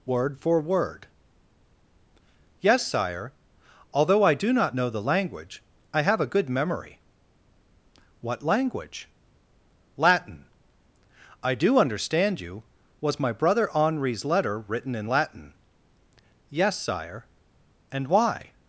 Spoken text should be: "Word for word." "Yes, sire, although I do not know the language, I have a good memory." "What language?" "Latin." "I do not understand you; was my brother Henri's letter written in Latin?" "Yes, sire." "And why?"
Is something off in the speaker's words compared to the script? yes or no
yes